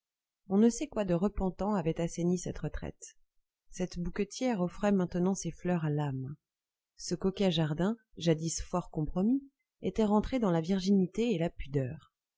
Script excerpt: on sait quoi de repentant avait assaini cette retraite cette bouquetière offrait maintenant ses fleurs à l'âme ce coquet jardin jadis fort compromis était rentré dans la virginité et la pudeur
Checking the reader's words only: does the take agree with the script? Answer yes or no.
no